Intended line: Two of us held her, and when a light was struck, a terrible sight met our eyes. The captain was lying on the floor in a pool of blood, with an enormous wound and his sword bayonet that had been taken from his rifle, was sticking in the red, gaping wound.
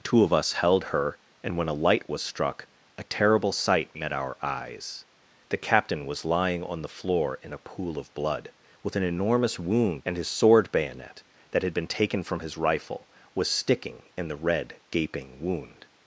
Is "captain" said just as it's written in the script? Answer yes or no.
yes